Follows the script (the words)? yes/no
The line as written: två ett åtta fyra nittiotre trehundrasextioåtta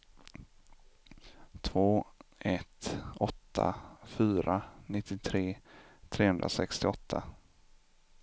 yes